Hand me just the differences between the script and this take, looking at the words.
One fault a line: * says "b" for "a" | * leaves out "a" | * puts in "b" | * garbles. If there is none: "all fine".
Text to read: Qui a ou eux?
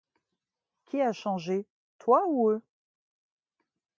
* puts in "changé toi"